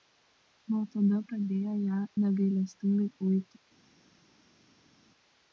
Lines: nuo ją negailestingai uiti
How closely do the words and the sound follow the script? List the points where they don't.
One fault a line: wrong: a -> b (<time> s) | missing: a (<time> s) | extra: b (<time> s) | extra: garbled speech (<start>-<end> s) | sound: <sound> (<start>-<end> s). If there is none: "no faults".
extra: tada pradėjo (0.9 s)